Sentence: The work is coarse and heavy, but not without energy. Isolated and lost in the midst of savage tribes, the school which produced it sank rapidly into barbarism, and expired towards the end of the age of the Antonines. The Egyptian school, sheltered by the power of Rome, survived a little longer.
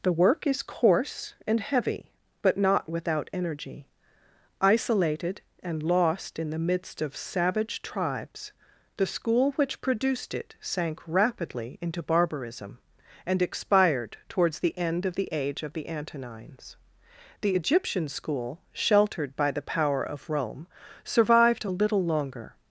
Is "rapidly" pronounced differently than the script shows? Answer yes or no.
no